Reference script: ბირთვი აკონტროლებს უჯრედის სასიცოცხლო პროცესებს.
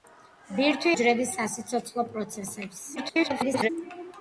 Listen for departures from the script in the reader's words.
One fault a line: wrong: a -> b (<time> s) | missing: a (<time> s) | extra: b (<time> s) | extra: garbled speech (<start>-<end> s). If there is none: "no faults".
missing: აკონტროლებს (0.9 s)
extra: garbled speech (3.0-3.7 s)